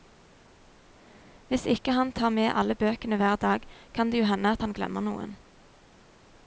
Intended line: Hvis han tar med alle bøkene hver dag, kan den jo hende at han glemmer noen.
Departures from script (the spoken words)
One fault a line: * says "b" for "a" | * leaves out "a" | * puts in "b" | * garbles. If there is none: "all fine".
* puts in "ikke"
* says "det" for "den"